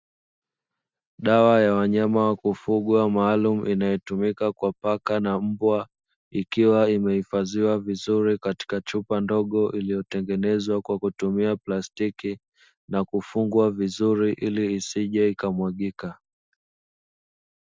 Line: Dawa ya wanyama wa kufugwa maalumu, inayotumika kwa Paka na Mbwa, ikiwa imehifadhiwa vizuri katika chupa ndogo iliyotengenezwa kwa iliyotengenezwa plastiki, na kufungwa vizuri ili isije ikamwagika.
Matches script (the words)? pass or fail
fail